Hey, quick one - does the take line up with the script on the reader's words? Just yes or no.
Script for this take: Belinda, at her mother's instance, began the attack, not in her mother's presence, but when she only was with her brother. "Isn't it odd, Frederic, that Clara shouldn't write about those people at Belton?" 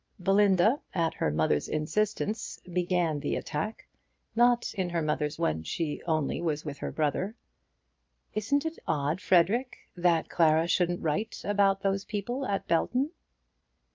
no